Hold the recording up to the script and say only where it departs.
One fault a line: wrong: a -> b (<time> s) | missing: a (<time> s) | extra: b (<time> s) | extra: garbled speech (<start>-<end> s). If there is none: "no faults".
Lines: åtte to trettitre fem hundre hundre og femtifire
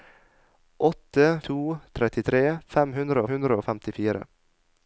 no faults